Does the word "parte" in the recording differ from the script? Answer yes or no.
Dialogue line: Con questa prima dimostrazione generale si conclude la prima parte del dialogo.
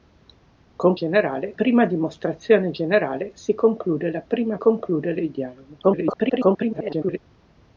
yes